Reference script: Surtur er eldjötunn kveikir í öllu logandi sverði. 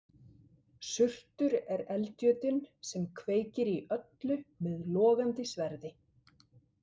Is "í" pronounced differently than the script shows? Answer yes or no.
no